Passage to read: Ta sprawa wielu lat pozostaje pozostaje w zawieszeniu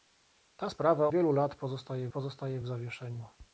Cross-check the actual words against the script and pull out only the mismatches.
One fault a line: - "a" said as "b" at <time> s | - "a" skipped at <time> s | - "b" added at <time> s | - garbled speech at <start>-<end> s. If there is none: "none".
none